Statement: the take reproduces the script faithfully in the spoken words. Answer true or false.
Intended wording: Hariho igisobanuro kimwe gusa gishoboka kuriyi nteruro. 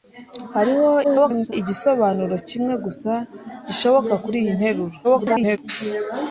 false